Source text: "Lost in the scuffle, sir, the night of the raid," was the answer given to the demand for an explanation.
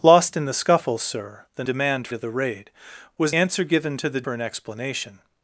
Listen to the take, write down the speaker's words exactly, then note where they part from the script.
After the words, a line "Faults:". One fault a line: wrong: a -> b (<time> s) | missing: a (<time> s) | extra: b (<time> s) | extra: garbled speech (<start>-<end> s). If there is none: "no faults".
"Lost in the scuffle, sir, the demand of the raid," was answer given to the for an explanation.
Faults:
wrong: night -> demand (1.6 s)
missing: the (3.3 s)
missing: demand (4.2 s)